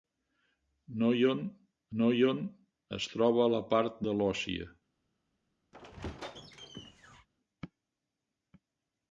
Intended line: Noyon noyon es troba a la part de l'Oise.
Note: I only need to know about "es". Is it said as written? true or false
true